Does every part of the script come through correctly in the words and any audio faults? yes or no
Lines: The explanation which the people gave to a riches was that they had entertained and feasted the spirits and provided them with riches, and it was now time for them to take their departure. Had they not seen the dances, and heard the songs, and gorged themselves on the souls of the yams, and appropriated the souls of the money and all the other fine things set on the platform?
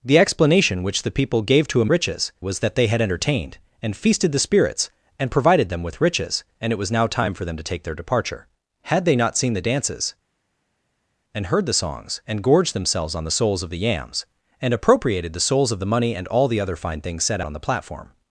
yes